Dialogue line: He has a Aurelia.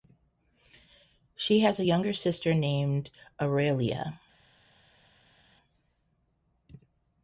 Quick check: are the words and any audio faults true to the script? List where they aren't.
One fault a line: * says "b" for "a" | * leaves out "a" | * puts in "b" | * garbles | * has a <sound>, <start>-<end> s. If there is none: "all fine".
* says "She" for "He"
* puts in "younger sister named"